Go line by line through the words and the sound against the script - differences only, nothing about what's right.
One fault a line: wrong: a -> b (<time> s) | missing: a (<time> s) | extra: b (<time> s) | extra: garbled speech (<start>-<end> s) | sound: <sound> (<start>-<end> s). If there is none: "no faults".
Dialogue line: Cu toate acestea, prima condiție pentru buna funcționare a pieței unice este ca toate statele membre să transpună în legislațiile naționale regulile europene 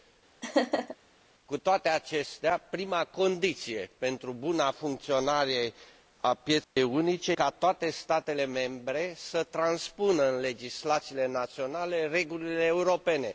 sound: laugh (0.4-1.0 s)
sound: dropout (6.6-6.8 s)
missing: este (7.3 s)